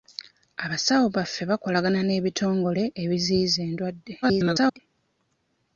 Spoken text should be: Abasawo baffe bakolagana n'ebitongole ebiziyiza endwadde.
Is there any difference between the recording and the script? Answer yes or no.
yes